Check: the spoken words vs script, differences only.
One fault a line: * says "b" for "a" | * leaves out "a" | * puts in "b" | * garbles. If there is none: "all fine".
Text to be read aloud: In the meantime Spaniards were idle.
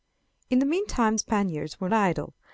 all fine